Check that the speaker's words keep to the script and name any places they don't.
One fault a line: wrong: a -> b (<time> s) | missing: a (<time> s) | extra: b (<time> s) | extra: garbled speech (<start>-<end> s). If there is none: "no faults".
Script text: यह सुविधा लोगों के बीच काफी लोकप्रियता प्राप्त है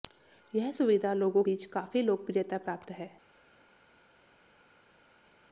missing: के (1.4 s)